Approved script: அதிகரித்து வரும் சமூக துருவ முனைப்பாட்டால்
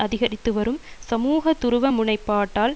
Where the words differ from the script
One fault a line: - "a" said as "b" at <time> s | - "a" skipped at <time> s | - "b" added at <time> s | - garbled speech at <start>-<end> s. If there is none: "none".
none